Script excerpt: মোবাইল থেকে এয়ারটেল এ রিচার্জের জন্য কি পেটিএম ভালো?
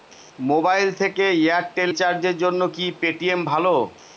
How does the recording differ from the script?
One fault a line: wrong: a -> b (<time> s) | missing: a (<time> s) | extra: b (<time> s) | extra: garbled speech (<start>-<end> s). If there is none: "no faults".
missing: এ (1.9 s)